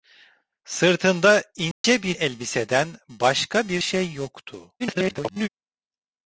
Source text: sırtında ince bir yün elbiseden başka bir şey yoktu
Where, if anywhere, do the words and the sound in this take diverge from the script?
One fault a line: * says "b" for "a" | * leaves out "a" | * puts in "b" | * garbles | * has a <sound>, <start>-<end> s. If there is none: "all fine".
* has a dropout, 1.7-1.8 s
* leaves out "yün"
* garbles